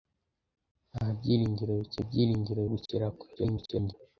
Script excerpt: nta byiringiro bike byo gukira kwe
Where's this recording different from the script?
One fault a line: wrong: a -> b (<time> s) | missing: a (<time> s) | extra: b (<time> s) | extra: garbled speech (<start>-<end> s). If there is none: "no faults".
wrong: byo -> byiringiro (2.1 s)
extra: garbled speech (3.4-3.9 s)